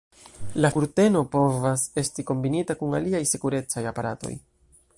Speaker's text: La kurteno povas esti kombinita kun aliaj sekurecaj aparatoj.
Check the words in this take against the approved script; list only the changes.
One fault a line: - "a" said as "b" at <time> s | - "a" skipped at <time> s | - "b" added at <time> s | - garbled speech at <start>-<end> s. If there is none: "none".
none